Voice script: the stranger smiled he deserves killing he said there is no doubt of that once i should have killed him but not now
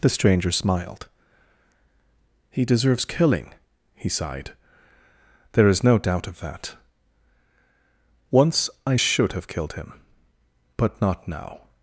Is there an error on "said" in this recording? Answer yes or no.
yes